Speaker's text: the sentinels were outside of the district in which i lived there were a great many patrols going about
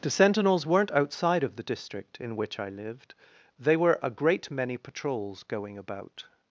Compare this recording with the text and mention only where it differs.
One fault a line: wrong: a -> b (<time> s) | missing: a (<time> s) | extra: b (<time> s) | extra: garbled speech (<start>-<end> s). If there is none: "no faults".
wrong: were -> weren't (0.7 s)
wrong: there -> they (3.6 s)